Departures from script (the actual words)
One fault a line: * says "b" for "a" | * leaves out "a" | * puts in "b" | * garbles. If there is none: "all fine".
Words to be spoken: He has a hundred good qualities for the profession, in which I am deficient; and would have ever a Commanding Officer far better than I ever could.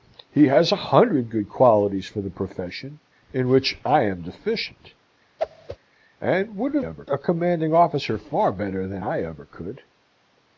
all fine